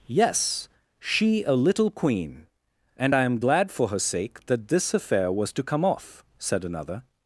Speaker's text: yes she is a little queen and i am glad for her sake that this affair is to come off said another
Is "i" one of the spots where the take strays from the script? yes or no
no